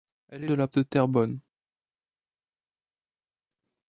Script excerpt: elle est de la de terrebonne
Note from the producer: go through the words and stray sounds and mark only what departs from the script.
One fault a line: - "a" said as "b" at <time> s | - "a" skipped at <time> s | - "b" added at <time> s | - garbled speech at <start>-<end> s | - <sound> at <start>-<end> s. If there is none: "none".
none